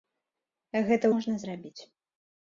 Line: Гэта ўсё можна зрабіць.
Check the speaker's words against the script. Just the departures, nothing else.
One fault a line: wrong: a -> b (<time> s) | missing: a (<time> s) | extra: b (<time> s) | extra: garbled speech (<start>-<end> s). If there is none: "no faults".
missing: ўсё (1.1 s)